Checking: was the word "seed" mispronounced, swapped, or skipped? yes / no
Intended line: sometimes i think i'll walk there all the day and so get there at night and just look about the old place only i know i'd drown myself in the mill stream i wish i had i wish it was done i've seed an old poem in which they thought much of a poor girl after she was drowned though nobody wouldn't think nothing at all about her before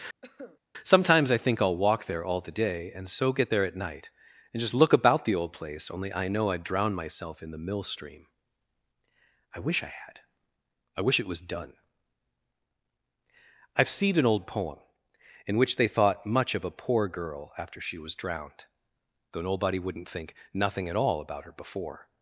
yes